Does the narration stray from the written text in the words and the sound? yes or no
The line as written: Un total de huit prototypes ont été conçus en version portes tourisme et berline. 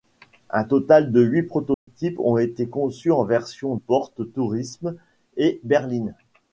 yes